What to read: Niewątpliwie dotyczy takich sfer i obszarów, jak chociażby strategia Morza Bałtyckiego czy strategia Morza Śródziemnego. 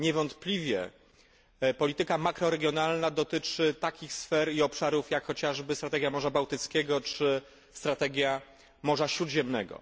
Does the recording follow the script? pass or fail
fail